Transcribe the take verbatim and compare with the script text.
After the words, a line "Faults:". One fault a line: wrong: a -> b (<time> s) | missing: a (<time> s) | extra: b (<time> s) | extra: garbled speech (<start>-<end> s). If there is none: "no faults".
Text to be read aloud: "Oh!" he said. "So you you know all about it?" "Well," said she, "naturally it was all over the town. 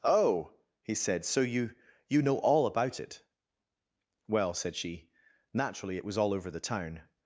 "Oh!" he said. "So you you know all about it?" "Well," said she, "naturally it was all over the town.
Faults:
no faults